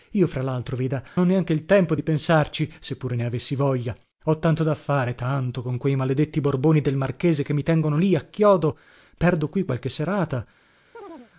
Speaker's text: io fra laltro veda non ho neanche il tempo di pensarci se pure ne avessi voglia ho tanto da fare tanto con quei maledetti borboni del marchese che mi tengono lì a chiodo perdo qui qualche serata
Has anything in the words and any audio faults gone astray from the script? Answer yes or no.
yes